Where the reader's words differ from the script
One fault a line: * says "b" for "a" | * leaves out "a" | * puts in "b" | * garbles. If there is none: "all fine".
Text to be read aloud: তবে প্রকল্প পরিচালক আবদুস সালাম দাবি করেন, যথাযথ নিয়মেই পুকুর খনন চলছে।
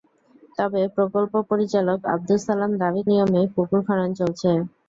* leaves out "করেন যথাযথ"